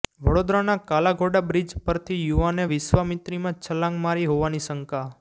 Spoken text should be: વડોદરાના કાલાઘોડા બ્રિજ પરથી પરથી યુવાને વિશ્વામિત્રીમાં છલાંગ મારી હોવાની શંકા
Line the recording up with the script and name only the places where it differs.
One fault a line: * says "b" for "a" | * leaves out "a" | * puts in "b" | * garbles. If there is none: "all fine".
* leaves out "પરથી"